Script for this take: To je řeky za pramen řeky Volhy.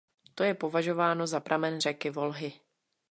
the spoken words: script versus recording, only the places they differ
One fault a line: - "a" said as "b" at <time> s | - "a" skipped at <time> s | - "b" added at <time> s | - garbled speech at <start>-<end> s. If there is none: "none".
- "řeky" said as "považováno" at 0.5 s